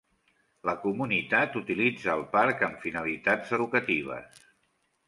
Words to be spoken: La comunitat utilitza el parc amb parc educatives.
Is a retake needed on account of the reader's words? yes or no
yes